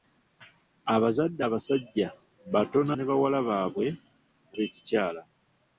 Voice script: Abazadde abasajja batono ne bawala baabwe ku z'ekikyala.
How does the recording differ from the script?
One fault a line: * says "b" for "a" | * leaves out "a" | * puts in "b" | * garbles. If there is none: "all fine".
all fine